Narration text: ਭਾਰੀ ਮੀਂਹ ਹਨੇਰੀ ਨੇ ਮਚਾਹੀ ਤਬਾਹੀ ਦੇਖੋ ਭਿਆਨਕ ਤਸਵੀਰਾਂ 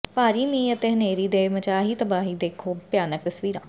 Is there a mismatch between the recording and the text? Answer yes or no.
yes